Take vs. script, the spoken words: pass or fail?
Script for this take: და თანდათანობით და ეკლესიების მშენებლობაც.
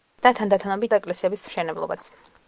pass